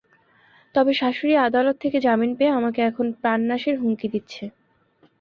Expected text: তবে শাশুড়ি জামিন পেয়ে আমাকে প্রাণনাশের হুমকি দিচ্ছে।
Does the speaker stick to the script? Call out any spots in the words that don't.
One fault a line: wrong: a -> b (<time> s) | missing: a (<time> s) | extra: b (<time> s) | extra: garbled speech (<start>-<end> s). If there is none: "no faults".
extra: আদালত থেকে (1.5 s)
extra: এখন (2.9 s)